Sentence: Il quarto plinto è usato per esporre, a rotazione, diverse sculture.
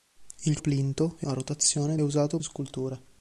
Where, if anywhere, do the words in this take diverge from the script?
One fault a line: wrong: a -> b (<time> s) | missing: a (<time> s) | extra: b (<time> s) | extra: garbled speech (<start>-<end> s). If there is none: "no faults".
missing: quarto (0.6 s)
missing: usato per esporre (1.3 s)
wrong: diverse -> usato (2.0 s)